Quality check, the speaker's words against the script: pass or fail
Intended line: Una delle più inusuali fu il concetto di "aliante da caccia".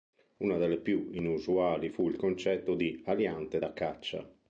pass